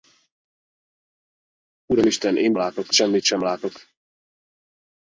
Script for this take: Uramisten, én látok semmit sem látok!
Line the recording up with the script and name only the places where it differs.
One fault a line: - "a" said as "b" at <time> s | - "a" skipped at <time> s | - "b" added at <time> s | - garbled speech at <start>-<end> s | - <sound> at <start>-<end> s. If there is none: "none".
none